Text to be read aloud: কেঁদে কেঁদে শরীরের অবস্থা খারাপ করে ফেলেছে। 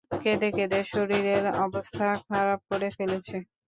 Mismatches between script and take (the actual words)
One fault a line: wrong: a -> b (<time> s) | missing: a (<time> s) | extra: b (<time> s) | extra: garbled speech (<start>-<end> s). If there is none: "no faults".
no faults